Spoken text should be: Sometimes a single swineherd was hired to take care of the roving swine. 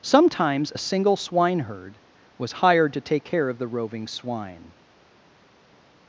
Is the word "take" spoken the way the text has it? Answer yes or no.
yes